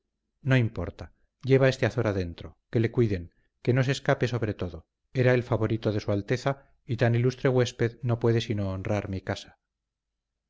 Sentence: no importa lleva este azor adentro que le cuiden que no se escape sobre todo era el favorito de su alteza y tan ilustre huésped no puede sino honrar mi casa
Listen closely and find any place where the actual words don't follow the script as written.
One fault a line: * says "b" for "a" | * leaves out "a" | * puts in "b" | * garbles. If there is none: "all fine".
all fine